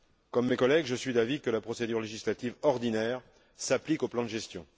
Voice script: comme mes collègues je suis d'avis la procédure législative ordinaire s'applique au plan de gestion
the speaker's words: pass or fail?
fail